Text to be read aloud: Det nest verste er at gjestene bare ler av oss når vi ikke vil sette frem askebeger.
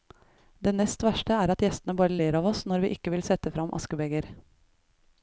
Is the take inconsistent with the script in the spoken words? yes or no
no